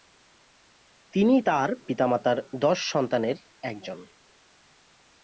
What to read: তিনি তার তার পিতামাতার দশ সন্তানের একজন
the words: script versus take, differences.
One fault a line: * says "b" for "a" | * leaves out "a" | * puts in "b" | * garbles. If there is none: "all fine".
* leaves out "তার"